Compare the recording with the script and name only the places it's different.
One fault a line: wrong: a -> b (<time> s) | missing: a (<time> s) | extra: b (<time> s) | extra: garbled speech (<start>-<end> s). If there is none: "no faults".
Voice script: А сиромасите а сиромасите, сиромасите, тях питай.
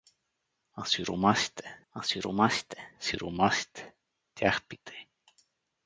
no faults